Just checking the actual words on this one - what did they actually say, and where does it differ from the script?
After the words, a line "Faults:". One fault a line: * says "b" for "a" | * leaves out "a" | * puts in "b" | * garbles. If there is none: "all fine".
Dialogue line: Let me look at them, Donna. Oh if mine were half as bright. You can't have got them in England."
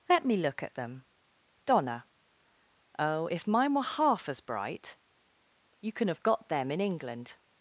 Let me look at them, Donna. Oh if mine were half as bright. You can have got them in England."
Faults:
* says "can" for "can't"